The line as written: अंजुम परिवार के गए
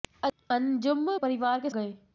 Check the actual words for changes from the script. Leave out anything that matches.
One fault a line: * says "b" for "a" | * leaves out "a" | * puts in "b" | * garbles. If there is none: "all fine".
all fine